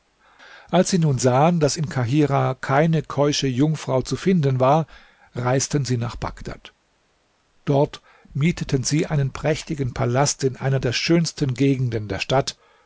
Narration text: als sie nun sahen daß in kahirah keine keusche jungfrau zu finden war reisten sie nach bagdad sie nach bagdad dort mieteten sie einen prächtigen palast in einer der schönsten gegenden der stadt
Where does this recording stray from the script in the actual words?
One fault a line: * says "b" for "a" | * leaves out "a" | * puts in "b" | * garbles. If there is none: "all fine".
* leaves out "sie nach bagdad"